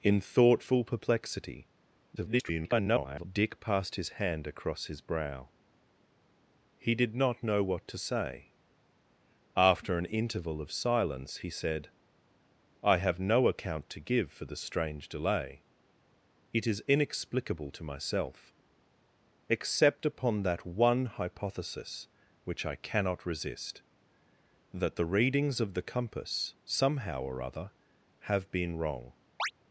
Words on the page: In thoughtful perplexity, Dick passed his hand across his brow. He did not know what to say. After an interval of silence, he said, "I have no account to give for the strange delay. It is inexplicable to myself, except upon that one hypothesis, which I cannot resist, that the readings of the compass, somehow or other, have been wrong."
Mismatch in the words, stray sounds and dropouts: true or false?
true